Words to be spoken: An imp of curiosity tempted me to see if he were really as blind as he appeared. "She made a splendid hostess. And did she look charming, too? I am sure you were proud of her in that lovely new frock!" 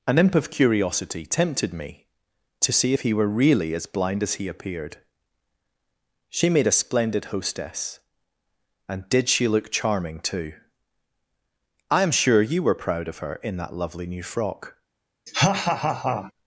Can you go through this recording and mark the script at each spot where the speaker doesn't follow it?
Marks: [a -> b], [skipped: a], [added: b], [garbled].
An imp of curiosity tempted me to see if he were really as blind as he appeared. "She made a splendid hostess. And did she look charming, too? I am sure you were proud of her in that lovely new frock!"